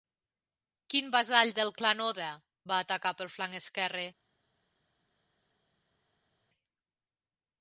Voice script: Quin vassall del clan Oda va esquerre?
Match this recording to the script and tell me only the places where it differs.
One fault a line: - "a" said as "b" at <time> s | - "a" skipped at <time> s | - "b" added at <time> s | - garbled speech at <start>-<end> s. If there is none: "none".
- "atacar pel flanc" added at 2.8 s